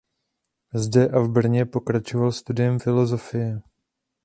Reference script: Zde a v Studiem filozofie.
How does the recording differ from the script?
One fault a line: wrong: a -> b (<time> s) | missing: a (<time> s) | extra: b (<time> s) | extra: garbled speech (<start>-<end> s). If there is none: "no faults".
extra: Brně pokračoval (1.3 s)